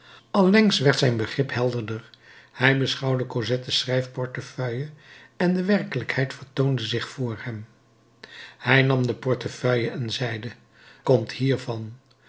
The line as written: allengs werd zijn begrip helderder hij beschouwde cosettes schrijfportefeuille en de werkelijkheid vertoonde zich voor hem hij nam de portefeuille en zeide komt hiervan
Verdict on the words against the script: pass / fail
pass